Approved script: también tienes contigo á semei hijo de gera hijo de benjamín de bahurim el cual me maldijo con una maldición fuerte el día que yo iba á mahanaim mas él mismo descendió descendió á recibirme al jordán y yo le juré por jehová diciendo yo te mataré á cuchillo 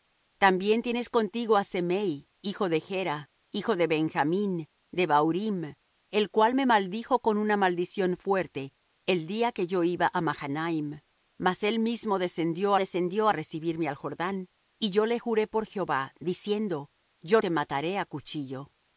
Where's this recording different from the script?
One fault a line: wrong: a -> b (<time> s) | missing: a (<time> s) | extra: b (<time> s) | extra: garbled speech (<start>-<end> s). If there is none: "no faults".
no faults